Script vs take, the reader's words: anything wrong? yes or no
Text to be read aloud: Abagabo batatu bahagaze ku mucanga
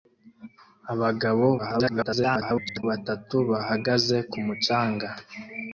yes